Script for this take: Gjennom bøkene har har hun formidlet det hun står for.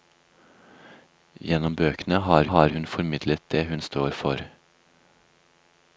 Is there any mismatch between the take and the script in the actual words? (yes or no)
no